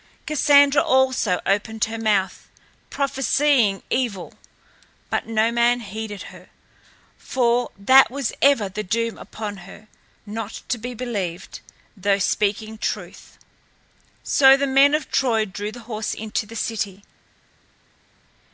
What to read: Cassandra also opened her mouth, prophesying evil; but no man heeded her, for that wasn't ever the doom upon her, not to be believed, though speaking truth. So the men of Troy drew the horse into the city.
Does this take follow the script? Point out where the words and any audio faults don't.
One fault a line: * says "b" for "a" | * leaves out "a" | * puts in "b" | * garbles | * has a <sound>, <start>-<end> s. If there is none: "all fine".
* says "was" for "wasn't"